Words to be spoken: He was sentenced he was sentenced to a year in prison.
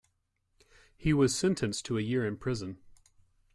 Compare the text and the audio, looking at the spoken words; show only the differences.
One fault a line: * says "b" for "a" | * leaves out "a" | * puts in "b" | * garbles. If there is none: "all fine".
* leaves out "he was sentenced"